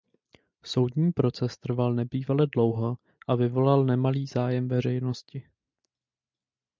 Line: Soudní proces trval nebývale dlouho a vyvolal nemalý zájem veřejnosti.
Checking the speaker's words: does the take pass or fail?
pass